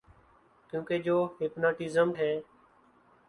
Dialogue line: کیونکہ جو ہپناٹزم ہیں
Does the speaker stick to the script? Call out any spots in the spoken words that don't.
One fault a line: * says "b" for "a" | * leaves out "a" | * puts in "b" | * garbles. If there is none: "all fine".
all fine